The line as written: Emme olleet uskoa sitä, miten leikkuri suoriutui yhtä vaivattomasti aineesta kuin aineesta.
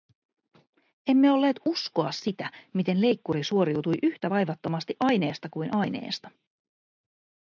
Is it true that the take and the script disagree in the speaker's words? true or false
false